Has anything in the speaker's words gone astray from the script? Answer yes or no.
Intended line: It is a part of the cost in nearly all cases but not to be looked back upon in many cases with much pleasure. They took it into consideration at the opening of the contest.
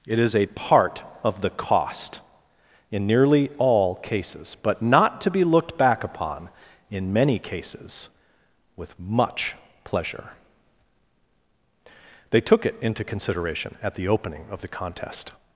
no